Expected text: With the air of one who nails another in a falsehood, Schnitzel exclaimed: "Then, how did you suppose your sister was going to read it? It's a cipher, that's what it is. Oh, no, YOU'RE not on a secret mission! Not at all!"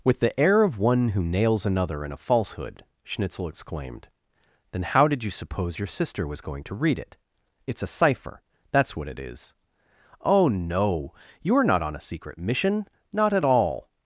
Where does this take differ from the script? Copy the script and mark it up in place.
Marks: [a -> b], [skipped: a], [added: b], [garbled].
With the air of one who nails another in a falsehood, Schnitzel exclaimed: "Then, how did you suppose your sister was going to read it? It's a cipher, that's what it is. Oh, no, YOU'RE not on a secret mission! Not at all!"